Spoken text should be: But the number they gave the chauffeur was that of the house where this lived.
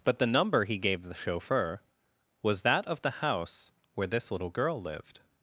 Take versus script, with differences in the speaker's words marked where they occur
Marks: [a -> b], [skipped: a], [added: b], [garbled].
But the number [they -> he] gave the chauffeur was that of the house where this [added: little girl] lived.